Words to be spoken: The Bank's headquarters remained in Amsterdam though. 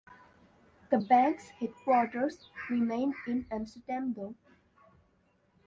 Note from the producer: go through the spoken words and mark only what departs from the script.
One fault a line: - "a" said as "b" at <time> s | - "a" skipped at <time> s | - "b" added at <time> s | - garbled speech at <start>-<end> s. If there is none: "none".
none